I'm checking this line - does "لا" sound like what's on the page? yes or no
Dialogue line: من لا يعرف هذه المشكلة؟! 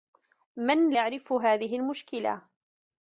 no